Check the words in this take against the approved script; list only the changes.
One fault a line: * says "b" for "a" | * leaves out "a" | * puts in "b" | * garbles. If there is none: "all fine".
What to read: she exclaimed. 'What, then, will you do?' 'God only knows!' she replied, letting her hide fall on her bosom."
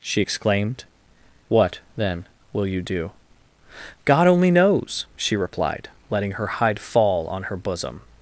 all fine